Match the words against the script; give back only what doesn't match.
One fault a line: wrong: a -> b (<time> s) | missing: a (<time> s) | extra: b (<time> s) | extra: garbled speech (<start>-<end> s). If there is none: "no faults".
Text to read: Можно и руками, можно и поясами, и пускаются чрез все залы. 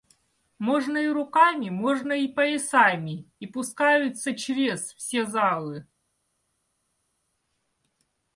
no faults